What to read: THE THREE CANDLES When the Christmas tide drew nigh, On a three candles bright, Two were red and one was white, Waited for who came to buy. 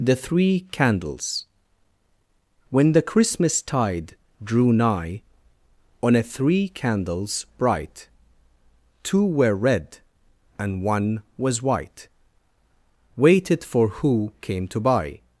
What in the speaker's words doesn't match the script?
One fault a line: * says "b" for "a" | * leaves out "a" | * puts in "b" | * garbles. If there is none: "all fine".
all fine